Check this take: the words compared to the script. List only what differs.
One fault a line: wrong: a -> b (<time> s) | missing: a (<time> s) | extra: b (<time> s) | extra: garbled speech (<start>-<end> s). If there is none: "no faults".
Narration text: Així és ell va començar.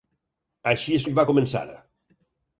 no faults